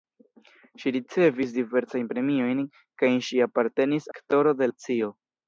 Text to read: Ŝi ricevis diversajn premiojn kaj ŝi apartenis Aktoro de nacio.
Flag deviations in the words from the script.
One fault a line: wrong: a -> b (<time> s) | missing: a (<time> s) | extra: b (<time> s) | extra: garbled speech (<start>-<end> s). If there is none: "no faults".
no faults